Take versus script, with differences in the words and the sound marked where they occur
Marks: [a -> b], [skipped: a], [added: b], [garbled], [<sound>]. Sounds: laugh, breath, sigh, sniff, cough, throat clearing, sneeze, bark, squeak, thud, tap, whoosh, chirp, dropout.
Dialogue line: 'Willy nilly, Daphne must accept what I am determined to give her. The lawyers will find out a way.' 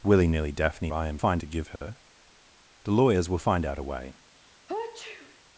'Willy nilly, Daphne [skipped: must accept what] I am [determined -> find] to give her. [dropout] The lawyers will find out a way.' [sneeze]